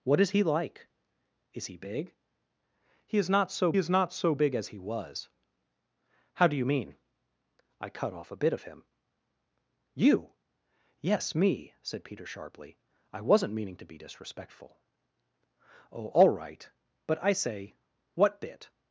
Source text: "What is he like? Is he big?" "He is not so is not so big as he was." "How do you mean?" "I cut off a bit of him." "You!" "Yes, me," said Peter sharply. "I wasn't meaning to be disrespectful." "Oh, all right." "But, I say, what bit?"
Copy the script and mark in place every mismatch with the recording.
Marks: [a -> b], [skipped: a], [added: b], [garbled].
"What is he like? Is he big?" "He is not so is not so big as he was." "How do you mean?" "I cut off a bit of him." "You!" "Yes, me," said Peter sharply. "I wasn't meaning to be disrespectful." "Oh, all right." "But, I say, what bit?"